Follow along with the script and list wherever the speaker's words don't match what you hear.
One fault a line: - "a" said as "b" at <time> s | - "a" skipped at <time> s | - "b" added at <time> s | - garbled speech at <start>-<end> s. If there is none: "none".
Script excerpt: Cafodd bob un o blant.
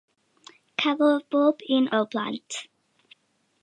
none